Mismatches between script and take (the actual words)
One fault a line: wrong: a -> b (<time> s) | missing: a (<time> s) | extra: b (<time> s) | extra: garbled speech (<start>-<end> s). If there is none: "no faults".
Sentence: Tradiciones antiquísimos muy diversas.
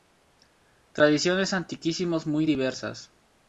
no faults